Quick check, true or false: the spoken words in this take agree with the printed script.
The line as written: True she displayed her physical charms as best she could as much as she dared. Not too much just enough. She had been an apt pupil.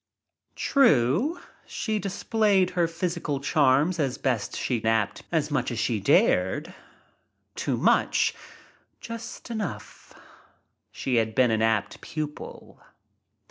false